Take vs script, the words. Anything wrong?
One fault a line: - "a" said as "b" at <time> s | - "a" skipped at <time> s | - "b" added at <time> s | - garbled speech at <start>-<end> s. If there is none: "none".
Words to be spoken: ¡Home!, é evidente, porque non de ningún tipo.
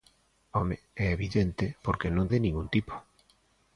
none